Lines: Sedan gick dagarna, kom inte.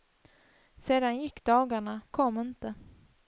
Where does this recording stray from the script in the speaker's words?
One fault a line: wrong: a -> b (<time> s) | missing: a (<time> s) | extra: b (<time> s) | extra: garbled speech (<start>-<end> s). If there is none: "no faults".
no faults